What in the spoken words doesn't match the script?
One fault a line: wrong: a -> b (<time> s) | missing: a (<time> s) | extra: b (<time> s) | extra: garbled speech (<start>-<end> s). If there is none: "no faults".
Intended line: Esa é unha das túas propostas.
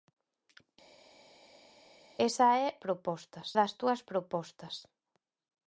wrong: unha -> propostas (2.8 s)